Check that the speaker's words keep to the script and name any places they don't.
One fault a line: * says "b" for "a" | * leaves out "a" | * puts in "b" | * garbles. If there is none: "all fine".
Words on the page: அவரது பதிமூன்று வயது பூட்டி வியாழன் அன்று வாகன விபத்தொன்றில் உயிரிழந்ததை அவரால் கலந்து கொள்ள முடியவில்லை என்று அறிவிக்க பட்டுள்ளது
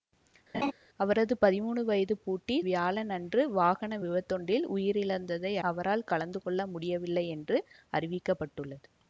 all fine